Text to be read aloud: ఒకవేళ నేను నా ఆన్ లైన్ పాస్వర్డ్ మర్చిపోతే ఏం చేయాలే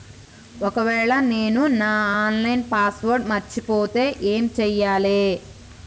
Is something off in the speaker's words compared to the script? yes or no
no